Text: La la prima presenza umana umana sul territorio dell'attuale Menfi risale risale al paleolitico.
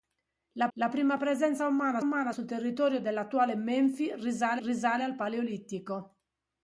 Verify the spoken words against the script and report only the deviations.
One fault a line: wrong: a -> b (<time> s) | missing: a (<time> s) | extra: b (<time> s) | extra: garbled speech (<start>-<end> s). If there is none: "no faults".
no faults